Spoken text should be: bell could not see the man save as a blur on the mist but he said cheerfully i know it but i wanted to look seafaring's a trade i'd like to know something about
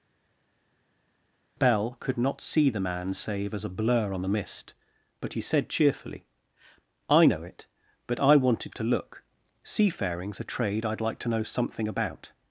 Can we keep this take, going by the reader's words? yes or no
yes